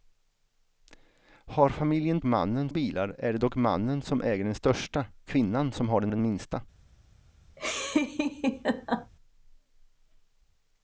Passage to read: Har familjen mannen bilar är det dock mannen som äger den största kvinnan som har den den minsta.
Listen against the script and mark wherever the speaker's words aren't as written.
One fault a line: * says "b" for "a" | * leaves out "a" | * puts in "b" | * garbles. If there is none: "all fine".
all fine